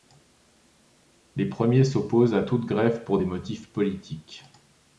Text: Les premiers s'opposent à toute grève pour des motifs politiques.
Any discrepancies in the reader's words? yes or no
no